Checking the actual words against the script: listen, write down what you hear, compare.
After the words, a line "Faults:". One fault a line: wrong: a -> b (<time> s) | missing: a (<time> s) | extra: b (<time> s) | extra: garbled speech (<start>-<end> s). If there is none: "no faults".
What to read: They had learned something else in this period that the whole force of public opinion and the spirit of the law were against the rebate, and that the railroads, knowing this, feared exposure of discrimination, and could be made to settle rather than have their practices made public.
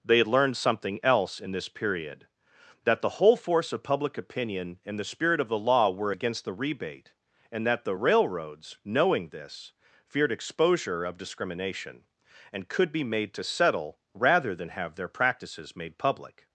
They had learned something else in this period that the whole force of public opinion and the spirit of the law were against the rebate, and that the railroads, knowing this, feared exposure of discrimination, and could be made to settle rather than have their practices made public.
Faults:
no faults